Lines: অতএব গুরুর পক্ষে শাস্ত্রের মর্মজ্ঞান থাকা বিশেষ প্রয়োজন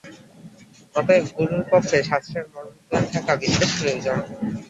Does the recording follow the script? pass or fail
pass